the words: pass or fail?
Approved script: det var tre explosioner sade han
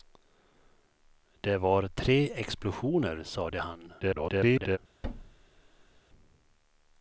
fail